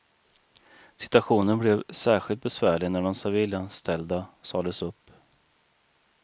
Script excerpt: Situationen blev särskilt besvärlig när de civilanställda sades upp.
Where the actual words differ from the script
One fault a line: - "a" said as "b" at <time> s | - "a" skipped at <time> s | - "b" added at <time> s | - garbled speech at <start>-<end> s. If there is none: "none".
none